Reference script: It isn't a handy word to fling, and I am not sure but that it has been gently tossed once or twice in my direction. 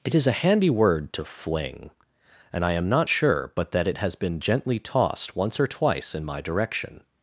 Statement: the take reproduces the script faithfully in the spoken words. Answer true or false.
false